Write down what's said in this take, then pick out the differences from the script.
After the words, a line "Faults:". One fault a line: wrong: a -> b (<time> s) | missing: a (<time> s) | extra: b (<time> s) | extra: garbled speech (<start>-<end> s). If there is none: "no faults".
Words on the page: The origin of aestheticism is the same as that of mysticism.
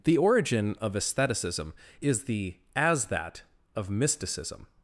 The origin of aestheticism is the as that of mysticism.
Faults:
missing: same (2.6 s)